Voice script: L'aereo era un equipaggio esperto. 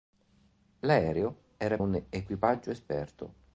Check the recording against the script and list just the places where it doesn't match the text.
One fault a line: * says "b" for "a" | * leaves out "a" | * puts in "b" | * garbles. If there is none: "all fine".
all fine